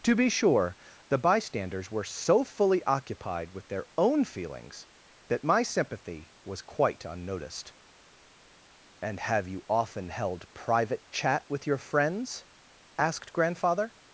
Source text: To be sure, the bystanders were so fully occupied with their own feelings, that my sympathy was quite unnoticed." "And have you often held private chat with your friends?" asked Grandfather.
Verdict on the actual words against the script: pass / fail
pass